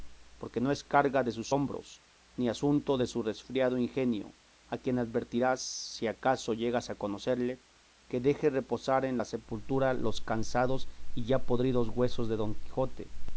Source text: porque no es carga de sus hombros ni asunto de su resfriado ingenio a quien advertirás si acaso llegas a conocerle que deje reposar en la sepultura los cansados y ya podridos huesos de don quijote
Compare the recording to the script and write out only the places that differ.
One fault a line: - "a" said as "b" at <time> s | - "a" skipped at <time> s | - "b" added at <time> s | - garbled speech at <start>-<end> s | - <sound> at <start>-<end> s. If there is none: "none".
none